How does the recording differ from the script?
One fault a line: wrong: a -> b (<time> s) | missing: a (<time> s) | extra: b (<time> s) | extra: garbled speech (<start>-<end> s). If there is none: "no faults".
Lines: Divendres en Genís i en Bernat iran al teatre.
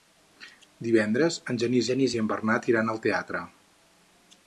extra: Genís (1.9 s)